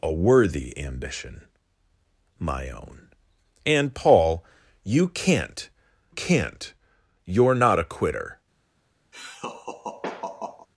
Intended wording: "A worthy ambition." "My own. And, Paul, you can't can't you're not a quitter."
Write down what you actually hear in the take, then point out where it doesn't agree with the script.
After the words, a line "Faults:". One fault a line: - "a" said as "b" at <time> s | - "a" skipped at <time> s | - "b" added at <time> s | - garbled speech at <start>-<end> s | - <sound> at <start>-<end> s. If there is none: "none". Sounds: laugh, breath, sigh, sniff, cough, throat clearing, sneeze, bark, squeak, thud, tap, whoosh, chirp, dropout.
"A worthy ambition." "My own. And, Paul, you can't can't you're not a quitter."
Faults:
- laugh at 9.1-10.7 s